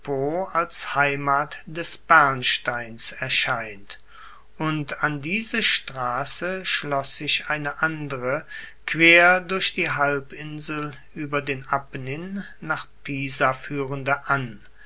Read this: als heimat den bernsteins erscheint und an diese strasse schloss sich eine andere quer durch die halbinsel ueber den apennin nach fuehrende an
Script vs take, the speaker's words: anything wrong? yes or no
yes